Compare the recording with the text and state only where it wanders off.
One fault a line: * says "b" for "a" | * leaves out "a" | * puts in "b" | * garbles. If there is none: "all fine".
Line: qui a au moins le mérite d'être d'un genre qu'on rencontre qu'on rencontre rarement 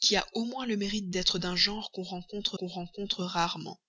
all fine